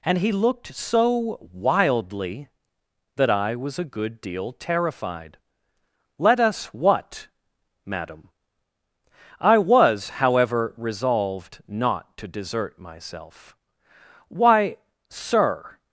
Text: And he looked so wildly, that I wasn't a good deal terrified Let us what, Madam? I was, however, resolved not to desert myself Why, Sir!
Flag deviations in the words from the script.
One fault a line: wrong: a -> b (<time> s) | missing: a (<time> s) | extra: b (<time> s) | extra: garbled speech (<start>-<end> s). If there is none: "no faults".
wrong: wasn't -> was (3.5 s)